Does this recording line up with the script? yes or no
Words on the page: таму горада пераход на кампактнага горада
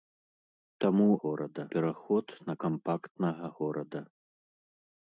yes